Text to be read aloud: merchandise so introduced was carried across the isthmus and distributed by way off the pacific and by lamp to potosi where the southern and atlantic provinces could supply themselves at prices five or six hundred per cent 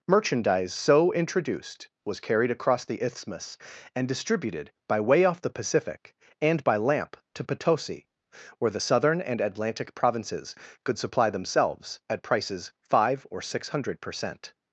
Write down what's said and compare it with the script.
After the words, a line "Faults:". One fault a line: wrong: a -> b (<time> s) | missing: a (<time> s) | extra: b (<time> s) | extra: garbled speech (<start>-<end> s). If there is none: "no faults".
merchandise so introduced was carried across the isthmus and distributed by way off the pacific and by lamp to potosi where the southern and atlantic provinces could supply themselves at prices five or six hundred per cent
Faults:
no faults